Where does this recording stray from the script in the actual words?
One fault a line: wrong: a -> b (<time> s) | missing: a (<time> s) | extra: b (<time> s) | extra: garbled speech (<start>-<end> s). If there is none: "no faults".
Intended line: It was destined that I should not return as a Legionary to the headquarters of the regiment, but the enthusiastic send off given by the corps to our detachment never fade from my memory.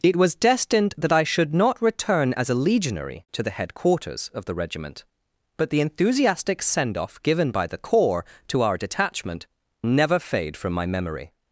no faults